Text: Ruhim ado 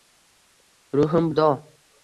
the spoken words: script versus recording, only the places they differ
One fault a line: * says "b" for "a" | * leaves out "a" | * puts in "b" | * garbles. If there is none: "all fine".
all fine